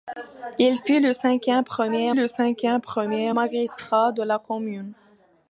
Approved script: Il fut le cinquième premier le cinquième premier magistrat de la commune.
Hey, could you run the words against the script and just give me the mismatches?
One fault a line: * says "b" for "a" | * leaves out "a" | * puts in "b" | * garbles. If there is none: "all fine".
all fine